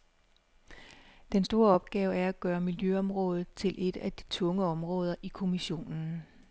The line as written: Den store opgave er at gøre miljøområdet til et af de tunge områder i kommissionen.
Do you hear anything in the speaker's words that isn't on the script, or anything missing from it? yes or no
no